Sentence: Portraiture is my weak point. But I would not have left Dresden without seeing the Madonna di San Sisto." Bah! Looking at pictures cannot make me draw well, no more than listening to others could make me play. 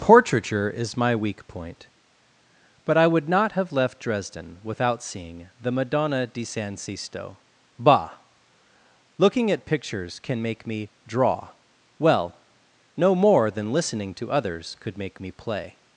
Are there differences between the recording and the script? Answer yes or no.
yes